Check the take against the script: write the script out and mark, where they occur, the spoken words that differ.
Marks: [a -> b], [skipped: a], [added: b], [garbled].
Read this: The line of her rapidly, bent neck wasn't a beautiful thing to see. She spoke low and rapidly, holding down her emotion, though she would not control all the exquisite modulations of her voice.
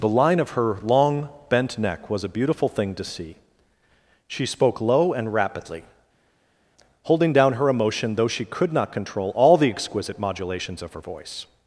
The line of her [rapidly, -> long] bent neck [wasn't -> was] a beautiful thing to see. She spoke low and rapidly, holding down her emotion, though she [would -> could] not control all the exquisite modulations of her voice.